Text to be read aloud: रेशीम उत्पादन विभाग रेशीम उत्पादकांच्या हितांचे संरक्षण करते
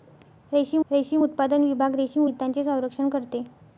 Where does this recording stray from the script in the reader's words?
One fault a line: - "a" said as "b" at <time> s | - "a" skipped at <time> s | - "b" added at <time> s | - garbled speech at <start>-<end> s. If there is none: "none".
- "रेशीम" added at 0.9 s
- "उत्पादकांच्या" skipped at 2.2 s